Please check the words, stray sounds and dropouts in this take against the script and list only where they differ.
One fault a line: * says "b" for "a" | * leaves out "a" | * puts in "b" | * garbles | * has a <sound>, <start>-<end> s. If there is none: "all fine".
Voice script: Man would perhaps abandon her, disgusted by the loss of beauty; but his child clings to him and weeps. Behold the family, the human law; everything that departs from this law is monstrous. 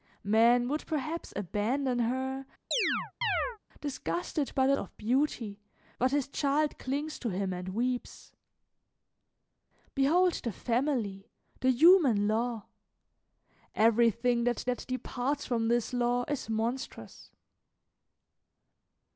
* has a chirp, 2.7-3.6 s
* leaves out "loss"
* puts in "that"